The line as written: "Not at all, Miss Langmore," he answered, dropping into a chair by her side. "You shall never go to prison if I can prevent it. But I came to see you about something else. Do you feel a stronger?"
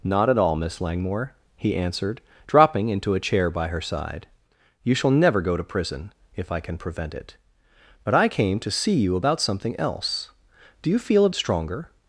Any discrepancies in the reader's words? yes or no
no